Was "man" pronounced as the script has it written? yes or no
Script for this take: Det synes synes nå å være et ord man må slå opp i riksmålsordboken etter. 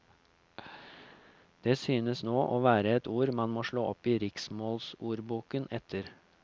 yes